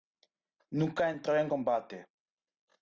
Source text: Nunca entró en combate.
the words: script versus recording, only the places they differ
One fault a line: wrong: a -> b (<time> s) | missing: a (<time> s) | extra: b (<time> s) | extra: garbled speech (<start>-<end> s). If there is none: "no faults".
no faults